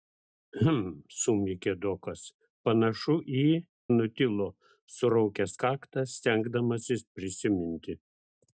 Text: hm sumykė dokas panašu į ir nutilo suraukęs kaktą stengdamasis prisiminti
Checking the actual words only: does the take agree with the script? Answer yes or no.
no